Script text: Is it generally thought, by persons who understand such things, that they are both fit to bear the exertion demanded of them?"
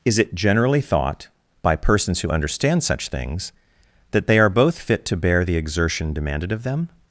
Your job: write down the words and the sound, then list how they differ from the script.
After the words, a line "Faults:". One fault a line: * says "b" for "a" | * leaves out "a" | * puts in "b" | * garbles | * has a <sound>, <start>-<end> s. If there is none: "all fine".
Is it generally thought, by persons who understand such things, that they are both fit to bear the exertion demanded of them?"
Faults:
all fine